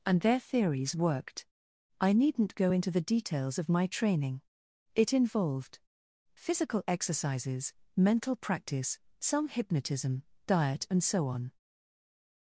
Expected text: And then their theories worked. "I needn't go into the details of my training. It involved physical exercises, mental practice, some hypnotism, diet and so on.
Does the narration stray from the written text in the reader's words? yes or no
yes